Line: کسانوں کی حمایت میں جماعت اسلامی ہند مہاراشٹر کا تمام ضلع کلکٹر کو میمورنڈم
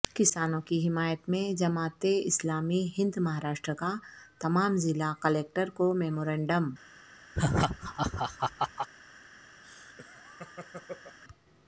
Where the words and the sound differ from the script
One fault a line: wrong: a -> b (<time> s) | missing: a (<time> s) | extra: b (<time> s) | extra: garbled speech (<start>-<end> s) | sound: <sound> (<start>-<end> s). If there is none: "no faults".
sound: laugh (7.3-8.9 s)
sound: laugh (9.6-11.2 s)